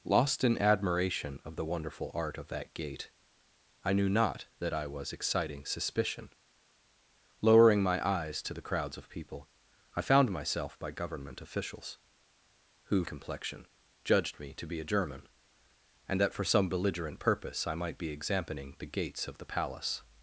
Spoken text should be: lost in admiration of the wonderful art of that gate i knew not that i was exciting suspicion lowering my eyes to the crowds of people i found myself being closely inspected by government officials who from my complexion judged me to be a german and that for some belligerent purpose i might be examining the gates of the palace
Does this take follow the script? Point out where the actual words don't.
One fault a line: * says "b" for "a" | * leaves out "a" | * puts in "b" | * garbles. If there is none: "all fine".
* leaves out "being closely inspected"
* leaves out "from my"